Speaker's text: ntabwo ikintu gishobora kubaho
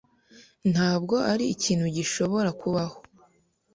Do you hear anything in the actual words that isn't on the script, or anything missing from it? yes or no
yes